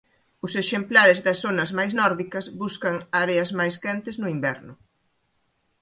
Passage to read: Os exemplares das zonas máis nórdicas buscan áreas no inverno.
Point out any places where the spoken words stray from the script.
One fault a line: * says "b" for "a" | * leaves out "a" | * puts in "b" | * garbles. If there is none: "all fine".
* puts in "máis quentes"